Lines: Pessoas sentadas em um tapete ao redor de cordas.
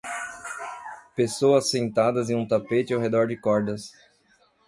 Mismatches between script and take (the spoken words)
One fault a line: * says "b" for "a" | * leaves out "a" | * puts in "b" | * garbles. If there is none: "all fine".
all fine